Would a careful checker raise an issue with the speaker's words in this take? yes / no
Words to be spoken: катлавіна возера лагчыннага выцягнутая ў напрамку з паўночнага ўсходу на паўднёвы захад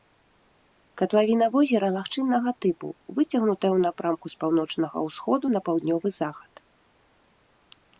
yes